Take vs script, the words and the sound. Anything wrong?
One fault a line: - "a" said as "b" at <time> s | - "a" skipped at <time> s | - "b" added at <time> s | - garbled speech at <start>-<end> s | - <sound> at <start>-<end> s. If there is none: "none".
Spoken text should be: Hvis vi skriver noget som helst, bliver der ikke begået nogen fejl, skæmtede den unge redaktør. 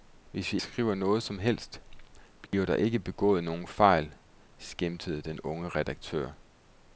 - dropout at 2.5-2.5 s